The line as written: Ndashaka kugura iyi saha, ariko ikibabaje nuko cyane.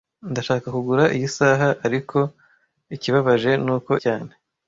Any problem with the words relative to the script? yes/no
no